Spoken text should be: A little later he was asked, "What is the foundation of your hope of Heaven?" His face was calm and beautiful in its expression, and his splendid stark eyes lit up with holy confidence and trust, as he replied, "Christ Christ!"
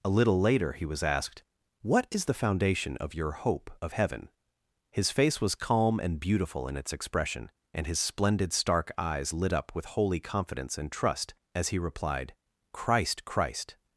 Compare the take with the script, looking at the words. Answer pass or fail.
pass